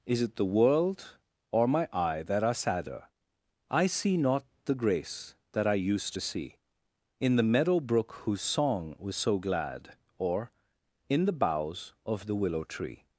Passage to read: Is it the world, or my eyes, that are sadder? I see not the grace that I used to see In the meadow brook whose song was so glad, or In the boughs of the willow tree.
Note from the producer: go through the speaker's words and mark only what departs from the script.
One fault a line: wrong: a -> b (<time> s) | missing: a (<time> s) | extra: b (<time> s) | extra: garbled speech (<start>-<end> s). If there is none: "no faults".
wrong: eyes -> eye (1.9 s)